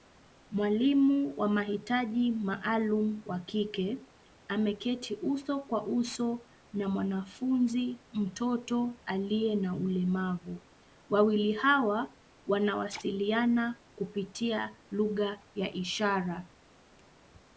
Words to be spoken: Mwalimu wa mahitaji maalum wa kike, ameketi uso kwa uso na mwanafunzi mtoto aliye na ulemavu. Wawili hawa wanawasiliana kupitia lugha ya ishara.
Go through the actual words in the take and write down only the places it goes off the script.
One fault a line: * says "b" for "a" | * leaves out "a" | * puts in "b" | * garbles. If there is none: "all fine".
all fine